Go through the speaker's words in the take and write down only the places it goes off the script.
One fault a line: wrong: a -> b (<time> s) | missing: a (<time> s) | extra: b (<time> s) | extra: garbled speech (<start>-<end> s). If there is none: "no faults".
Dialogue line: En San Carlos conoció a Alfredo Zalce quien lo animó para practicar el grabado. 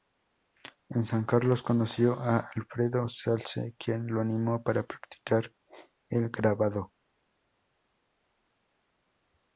no faults